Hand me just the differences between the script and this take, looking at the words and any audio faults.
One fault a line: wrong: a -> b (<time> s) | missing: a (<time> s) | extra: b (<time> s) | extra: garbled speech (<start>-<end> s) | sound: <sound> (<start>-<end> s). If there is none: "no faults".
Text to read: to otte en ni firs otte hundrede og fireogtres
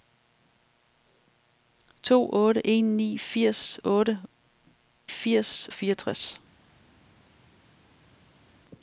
wrong: hundrede -> firs (5.1 s)